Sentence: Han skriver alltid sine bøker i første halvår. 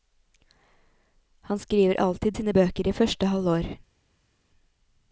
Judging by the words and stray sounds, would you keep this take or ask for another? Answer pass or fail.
pass